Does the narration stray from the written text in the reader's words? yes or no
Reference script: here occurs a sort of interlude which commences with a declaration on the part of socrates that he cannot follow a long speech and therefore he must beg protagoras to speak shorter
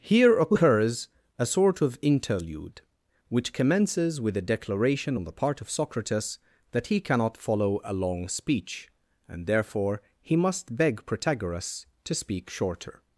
no